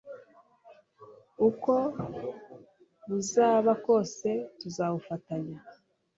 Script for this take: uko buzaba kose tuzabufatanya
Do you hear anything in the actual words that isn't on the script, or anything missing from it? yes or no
no